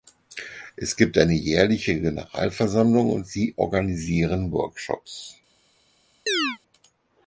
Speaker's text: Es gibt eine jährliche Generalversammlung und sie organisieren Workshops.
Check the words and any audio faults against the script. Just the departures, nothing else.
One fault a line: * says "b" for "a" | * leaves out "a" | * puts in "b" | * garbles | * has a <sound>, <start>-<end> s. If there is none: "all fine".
* has a chirp, 6.3-6.6 s